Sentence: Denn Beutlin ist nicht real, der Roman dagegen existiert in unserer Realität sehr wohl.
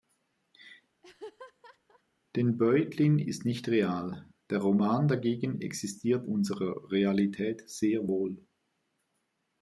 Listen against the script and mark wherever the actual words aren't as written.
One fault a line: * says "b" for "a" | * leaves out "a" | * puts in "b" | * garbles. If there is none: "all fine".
* leaves out "in"